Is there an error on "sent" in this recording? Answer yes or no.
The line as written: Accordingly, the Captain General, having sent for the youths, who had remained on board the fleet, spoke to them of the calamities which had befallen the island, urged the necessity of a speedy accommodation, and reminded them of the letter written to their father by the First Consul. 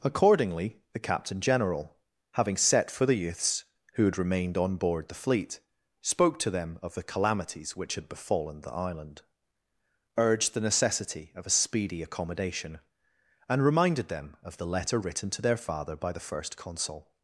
yes